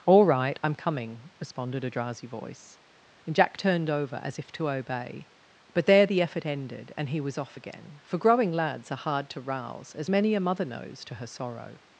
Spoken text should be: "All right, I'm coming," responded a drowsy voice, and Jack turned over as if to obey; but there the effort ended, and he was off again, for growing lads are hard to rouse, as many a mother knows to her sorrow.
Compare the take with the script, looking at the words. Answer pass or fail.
pass